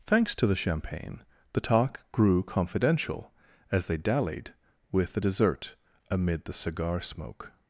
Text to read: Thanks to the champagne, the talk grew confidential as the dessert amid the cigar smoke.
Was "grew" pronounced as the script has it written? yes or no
yes